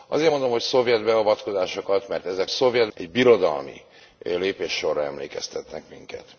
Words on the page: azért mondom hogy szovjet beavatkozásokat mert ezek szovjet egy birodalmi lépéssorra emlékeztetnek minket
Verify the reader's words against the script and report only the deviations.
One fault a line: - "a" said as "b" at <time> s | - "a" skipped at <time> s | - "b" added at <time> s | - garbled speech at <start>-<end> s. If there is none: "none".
none